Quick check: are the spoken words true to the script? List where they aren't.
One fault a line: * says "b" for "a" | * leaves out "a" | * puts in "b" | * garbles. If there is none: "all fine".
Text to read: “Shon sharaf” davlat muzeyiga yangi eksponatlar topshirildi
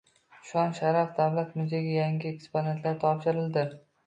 all fine